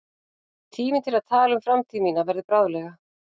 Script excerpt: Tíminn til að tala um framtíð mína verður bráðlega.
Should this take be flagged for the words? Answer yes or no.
no